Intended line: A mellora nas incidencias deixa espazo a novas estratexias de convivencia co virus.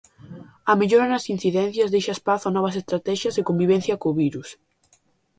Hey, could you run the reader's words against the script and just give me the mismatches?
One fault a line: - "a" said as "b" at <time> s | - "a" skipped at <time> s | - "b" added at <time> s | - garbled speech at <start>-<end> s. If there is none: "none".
none